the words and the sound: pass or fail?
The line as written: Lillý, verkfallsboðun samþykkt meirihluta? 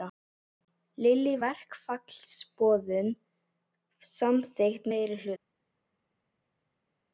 pass